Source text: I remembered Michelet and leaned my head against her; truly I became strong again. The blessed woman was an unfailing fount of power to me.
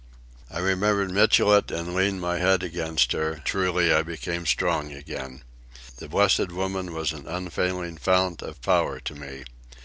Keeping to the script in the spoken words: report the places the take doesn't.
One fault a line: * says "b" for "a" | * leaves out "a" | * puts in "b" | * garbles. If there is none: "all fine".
all fine